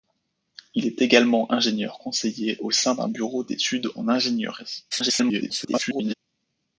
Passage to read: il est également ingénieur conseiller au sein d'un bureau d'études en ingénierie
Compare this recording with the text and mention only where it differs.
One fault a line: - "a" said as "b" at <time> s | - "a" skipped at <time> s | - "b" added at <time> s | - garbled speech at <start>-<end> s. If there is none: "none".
- garbled speech at 4.9-6.1 s